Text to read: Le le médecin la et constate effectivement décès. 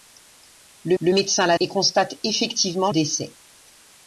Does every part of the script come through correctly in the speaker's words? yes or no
yes